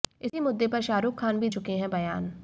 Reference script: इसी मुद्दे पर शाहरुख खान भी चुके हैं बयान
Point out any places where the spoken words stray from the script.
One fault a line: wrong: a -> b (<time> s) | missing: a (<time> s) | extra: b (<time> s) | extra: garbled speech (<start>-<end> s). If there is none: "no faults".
no faults